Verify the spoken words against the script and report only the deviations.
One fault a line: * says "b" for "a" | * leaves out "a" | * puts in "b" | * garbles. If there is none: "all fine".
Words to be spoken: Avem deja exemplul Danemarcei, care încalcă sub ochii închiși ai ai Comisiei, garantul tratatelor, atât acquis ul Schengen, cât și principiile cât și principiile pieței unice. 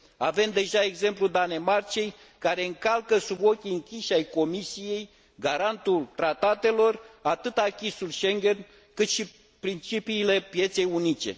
* leaves out "ai"
* leaves out "cât și principiile"